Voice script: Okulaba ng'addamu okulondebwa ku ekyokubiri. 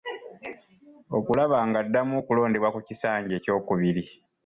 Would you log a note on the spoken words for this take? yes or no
yes